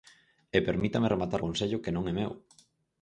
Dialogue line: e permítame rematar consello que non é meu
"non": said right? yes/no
yes